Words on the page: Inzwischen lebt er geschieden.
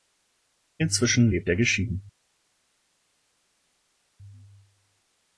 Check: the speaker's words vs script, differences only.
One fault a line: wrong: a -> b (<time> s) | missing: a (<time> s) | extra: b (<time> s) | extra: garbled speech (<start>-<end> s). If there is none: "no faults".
no faults